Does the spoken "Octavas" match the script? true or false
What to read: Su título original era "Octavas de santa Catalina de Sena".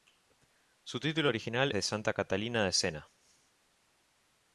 false